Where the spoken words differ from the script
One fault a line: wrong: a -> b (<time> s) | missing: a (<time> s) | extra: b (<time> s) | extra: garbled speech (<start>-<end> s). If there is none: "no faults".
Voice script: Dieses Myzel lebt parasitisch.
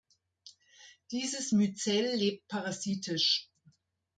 no faults